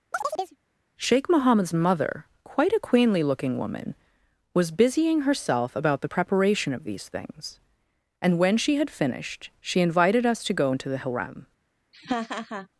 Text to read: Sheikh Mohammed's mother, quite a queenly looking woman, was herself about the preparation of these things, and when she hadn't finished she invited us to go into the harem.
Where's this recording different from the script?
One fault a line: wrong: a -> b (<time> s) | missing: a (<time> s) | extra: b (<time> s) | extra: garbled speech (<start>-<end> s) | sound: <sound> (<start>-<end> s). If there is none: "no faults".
sound: chirp (0.1-0.6 s)
extra: busying (4.7 s)
wrong: hadn't -> had (8.8 s)
sound: laugh (11.9-12.7 s)